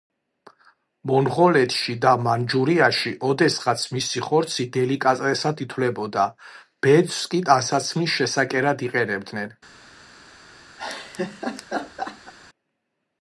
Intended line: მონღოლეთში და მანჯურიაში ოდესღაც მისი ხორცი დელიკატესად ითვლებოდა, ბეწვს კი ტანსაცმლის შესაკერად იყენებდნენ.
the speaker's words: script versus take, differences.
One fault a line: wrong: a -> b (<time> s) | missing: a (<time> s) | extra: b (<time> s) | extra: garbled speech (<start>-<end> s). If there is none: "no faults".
no faults